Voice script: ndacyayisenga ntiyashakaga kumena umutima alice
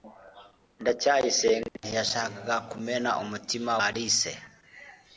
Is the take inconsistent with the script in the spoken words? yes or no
no